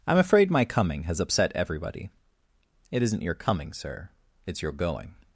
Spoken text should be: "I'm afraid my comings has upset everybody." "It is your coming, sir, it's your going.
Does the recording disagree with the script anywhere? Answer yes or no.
yes